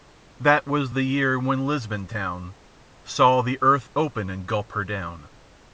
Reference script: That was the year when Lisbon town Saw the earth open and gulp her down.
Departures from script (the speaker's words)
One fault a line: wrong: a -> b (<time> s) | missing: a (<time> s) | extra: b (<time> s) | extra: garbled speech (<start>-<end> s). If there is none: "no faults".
no faults